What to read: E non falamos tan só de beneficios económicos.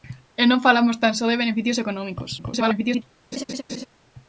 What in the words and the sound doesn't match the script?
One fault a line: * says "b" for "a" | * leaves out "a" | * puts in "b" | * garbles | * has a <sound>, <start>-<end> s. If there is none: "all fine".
* garbles
* has a laugh, 3.3-3.9 s